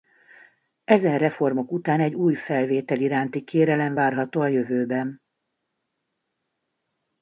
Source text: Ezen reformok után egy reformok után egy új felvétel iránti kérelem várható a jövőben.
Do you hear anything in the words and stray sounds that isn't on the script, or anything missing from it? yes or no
yes